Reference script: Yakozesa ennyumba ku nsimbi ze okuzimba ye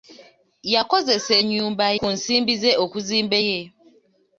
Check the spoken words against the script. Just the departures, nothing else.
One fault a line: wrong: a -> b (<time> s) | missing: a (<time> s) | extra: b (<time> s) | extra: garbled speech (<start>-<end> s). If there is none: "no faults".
no faults